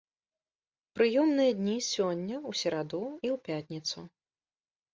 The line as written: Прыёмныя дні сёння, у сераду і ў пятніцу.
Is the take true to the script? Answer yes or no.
yes